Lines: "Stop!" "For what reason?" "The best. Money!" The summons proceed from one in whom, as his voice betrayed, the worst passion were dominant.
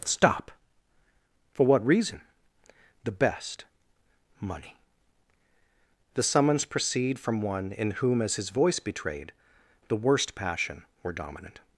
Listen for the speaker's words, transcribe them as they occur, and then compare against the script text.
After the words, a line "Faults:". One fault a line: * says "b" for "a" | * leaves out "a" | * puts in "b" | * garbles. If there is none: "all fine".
"Stop!" "For what reason?" "The best. Money!" The summons proceed from one in whom, as his voice betrayed, the worst passion were dominant.
Faults:
all fine